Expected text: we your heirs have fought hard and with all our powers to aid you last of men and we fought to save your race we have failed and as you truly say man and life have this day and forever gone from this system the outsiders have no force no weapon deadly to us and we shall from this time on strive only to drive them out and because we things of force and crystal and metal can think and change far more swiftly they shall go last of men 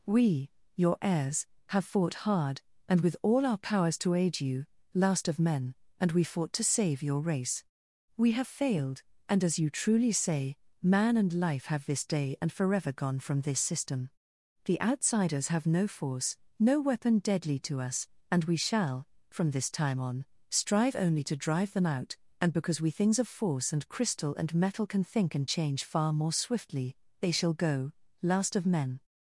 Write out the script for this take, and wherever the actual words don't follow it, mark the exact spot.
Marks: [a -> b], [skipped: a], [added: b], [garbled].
we your heirs have fought hard and with all our powers to aid you last of men and we fought to save your race we have failed and as you truly say man and life have this day and forever gone from this system the outsiders have no force no weapon deadly to us and we shall from this time on strive only to drive them out and because we things of force and crystal and metal can think and change far more swiftly they shall go last of men